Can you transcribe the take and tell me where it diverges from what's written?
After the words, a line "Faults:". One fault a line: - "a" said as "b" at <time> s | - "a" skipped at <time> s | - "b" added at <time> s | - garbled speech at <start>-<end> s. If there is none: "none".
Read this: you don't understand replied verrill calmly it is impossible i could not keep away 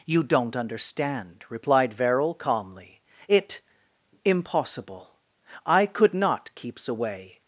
you don't understand replied verrill calmly it impossible i could not keeps away
Faults:
- "is" skipped at 3.6 s
- "keep" said as "keeps" at 6.5 s